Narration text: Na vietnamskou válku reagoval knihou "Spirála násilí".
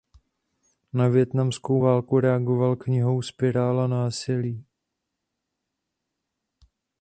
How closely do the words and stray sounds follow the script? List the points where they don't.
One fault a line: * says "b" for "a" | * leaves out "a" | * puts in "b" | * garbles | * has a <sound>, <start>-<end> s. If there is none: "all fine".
all fine